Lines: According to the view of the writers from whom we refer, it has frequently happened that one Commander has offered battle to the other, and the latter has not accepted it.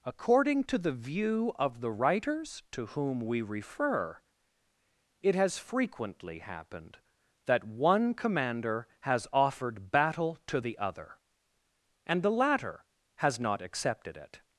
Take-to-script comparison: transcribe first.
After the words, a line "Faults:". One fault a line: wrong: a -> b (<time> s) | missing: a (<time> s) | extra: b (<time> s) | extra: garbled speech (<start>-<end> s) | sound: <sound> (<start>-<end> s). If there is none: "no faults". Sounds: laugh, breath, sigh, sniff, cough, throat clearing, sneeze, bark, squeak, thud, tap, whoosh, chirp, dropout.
According to the view of the writers to whom we refer, it has frequently happened that one Commander has offered battle to the other, and the latter has not accepted it.
Faults:
wrong: from -> to (2.7 s)